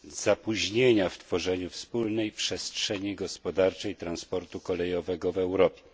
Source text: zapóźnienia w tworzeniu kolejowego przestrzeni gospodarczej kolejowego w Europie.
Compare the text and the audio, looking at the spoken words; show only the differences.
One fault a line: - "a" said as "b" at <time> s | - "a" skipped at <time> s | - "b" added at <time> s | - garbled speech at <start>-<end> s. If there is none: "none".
- "kolejowego" said as "wspólnej" at 1.7 s
- "transportu" added at 4.0 s